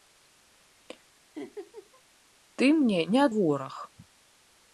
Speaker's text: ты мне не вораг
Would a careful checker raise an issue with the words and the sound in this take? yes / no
yes